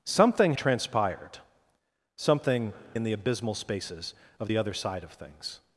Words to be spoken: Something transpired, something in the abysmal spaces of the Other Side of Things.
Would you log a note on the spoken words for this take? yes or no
no